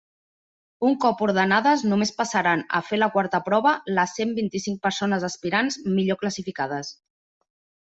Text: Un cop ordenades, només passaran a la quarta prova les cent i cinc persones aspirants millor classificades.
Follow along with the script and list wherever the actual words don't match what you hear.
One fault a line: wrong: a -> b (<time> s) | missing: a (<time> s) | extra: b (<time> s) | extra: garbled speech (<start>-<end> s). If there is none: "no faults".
extra: fer (2.9 s)
extra: vint (4.4 s)